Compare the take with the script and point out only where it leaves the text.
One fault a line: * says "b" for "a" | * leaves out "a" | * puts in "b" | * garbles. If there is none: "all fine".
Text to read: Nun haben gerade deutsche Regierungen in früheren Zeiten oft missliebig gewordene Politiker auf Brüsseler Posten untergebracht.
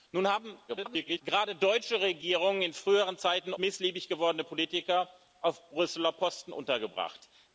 * garbles
* leaves out "oft"